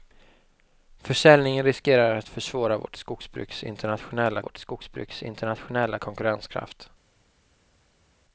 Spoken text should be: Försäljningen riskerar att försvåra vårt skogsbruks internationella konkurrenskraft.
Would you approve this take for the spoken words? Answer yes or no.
no